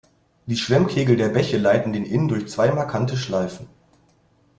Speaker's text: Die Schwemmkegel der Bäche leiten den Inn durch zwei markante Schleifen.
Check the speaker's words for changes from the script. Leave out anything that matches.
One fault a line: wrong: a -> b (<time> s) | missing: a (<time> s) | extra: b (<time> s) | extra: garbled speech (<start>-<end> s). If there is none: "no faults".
no faults